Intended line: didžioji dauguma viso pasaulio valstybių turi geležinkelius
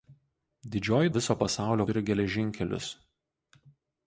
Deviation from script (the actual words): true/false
true